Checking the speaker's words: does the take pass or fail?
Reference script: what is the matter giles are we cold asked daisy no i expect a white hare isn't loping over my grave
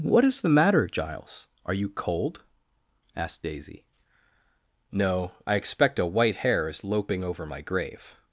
fail